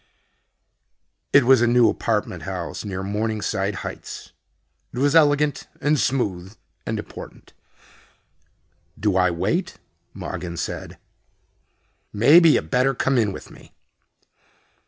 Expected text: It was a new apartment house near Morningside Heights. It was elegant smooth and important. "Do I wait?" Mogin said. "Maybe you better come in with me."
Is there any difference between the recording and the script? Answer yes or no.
yes